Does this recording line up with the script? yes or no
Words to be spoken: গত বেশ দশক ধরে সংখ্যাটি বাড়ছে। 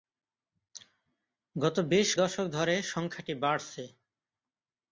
yes